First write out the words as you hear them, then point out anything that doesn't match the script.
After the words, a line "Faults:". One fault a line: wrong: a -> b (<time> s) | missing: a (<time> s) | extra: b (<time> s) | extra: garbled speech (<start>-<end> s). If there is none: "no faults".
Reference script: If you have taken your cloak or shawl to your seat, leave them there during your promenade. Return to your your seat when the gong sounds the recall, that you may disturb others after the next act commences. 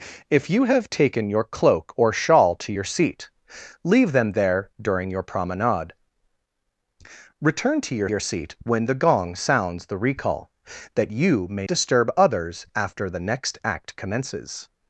If you have taken your cloak or shawl to your seat, leave them there during your promenade. Return to your your seat when the gong sounds the recall, that you may disturb others after the next act commences.
Faults:
no faults